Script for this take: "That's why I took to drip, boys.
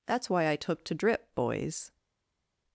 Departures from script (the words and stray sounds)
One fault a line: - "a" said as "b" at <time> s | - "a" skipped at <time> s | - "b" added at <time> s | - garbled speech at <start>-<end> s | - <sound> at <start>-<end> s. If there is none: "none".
none